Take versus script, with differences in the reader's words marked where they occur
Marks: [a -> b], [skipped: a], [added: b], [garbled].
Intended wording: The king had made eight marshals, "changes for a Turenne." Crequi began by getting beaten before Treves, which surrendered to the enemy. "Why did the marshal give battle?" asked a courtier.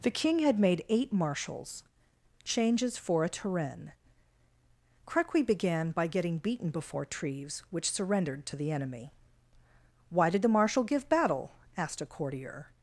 The king had made eight marshals, "changes for a Turenne." Crequi began by getting beaten before Treves, which surrendered to the enemy. "Why did the marshal give battle?" asked a courtier.